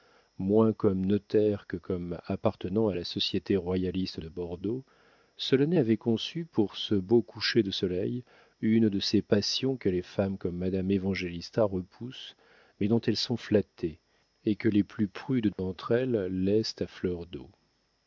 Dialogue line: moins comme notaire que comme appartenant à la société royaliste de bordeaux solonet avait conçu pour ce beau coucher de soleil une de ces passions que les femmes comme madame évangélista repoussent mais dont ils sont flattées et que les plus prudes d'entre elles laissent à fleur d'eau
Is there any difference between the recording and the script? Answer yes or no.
yes